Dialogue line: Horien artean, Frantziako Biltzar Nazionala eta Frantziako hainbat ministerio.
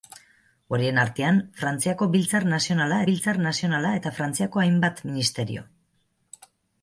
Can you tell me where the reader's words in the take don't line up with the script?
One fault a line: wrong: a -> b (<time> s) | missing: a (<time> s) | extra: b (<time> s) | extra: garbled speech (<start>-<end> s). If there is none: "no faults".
extra: Biltzar Nazionala (3.1 s)